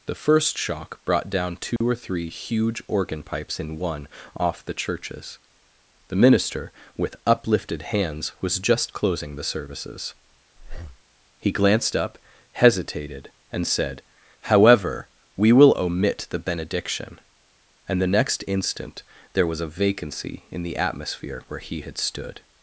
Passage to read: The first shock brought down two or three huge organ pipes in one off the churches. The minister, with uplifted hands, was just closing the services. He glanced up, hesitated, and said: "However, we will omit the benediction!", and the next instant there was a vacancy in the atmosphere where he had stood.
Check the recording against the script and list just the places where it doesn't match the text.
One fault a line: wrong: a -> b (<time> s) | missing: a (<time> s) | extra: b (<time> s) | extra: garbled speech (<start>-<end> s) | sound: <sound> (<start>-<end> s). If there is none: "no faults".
sound: dropout (1.8-1.8 s)
sound: breath (10.6-11.0 s)